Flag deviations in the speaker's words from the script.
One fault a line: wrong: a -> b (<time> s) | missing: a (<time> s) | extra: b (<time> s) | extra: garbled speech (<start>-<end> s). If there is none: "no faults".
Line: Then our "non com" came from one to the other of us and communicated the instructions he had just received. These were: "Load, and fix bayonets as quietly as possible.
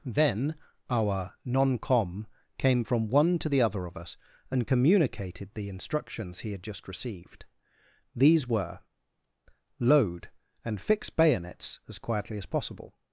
no faults